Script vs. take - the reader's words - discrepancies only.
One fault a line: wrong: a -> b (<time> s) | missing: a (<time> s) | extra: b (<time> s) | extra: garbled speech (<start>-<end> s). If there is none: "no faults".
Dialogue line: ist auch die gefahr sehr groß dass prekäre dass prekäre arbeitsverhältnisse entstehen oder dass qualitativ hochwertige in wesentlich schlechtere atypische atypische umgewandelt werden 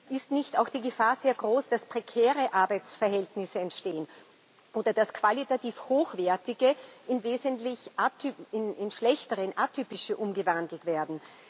extra: nicht (0.3 s)
missing: dass prekäre (2.5 s)
missing: atypische (10.2 s)